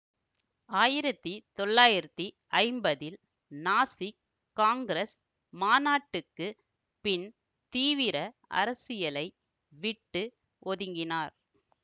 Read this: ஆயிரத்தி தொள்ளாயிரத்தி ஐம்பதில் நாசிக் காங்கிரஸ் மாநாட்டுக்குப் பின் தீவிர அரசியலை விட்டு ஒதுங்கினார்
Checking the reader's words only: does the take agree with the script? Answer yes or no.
yes